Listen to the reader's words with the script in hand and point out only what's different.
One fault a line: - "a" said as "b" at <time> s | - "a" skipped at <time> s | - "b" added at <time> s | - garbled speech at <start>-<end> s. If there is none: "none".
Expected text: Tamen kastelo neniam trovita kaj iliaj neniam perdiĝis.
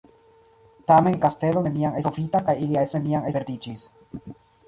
none